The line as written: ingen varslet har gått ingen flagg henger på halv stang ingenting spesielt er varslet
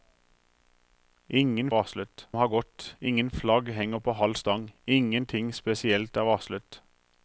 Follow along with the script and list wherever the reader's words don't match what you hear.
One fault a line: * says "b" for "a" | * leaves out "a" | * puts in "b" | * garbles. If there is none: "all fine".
all fine